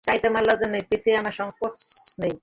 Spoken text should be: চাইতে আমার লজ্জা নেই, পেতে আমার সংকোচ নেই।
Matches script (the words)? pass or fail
pass